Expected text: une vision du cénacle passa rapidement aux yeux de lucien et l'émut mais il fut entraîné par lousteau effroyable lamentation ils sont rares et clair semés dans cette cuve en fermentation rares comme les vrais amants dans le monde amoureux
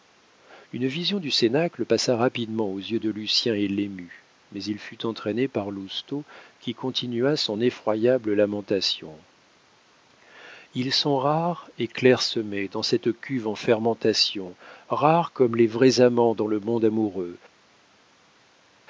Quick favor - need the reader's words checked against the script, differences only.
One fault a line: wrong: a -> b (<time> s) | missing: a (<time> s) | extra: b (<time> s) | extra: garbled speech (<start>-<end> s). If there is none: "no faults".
extra: qui continua son (6.6 s)